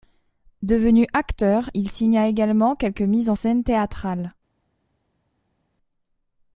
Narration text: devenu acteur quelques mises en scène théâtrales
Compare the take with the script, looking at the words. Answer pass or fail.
fail